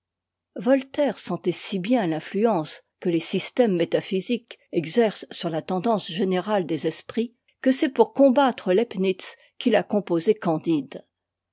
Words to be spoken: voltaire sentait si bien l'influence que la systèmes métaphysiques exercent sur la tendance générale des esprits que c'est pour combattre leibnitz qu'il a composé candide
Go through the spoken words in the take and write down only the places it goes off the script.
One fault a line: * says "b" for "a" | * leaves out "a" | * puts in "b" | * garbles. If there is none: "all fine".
* says "les" for "la"